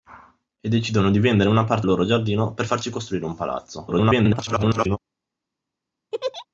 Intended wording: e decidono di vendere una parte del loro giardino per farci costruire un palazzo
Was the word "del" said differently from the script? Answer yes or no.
yes